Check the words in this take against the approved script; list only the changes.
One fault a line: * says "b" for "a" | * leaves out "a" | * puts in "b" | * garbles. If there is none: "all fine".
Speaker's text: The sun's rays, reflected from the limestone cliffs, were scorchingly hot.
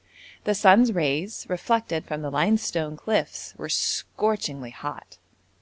all fine